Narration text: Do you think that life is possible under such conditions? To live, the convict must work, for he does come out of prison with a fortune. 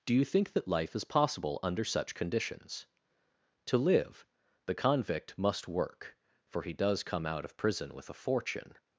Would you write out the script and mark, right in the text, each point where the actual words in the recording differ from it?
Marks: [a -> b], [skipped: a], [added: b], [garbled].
Do you think that life is possible under such conditions? To live, the convict must work, for he does come out of prison with a fortune.